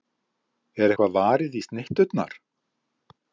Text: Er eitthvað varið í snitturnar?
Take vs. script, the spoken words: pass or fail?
pass